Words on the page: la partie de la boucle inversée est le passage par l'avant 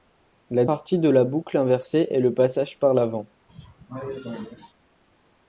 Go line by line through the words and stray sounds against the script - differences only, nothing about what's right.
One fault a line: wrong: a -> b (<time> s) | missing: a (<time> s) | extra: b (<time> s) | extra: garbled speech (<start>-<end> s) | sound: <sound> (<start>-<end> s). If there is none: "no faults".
sound: cough (3.5-4.7 s)